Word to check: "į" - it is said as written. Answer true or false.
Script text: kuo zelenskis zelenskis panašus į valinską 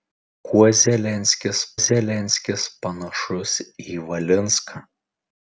true